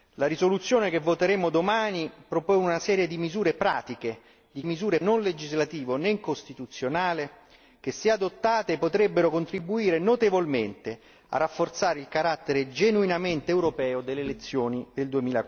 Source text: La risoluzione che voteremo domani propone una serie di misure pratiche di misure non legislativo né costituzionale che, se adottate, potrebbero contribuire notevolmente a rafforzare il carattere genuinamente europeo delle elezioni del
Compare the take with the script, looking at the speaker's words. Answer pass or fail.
pass